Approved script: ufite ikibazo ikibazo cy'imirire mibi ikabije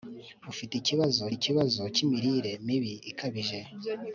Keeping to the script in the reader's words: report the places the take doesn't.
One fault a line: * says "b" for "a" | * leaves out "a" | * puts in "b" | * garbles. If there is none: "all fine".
all fine